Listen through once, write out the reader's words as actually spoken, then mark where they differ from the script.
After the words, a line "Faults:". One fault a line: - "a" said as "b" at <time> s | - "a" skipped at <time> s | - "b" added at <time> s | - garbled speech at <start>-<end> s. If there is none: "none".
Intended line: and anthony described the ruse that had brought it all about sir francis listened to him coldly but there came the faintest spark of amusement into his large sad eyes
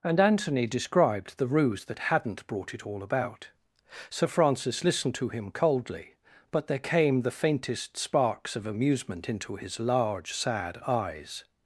and anthony described the ruse that hadn't brought it all about sir francis listened to him coldly but there came the faintest sparks of amusement into his large sad eyes
Faults:
- "had" said as "hadn't" at 2.0 s
- "spark" said as "sparks" at 8.0 s